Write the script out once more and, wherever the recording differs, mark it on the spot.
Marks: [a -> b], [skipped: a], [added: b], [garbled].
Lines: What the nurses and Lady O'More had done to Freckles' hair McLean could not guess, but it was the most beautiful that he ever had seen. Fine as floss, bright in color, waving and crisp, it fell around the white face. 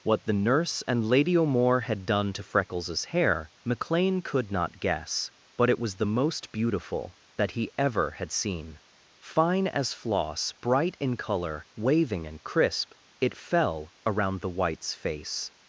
What the [nurses -> nurse] and Lady O'More had done to Freckles' hair McLean could not guess, but it was the most beautiful that he ever had seen. Fine as floss, bright in color, waving and crisp, it fell around the [white -> whites] face.